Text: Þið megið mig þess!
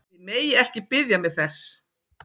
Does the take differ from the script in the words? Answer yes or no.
yes